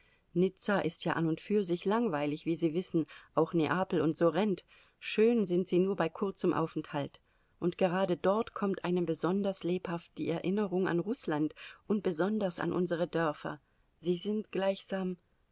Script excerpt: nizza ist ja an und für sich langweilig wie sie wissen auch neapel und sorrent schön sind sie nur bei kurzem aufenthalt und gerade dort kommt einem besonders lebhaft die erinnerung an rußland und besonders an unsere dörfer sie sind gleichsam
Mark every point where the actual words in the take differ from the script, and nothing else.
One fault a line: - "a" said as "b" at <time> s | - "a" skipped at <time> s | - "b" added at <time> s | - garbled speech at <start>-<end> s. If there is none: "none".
none